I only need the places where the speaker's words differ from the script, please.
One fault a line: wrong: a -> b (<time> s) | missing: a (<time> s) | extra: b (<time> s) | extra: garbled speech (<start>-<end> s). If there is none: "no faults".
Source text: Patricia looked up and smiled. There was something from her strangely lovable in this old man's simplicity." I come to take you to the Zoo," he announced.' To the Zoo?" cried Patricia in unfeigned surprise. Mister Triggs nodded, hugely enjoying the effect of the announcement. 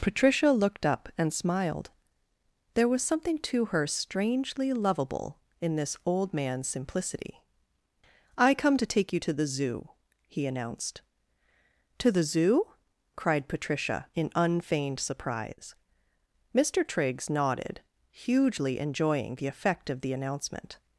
wrong: from -> to (3.4 s)